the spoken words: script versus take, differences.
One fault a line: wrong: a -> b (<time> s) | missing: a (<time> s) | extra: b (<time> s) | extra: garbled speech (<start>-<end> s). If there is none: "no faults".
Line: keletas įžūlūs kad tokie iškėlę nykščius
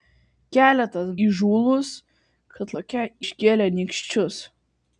no faults